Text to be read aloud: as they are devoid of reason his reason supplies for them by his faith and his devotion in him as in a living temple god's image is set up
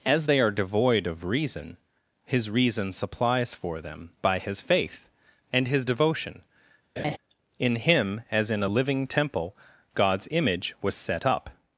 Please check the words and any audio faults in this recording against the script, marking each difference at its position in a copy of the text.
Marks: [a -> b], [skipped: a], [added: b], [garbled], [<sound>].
as they are devoid of reason his reason supplies for them by his faith and his devotion [laugh] in him as in a living temple god's image [is -> was] set up